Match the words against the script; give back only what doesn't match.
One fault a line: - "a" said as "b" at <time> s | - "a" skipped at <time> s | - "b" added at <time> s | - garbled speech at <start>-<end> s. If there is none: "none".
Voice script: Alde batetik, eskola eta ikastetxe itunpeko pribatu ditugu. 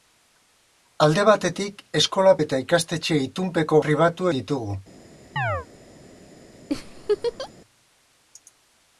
none